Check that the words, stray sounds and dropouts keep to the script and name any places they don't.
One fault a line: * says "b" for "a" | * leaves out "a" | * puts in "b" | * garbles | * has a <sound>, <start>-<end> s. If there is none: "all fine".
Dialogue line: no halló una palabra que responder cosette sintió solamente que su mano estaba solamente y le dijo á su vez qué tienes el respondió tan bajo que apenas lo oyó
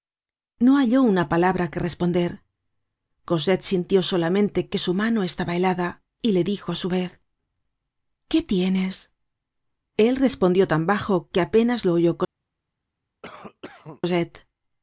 * says "helada" for "solamente"
* has a cough, 13.2-14.0 s